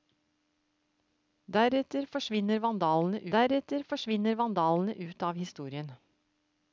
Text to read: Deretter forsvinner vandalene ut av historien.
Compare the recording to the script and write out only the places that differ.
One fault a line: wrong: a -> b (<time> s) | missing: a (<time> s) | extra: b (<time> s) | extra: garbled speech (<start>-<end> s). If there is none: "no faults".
extra: deretter forsvinner vandalene (3.4 s)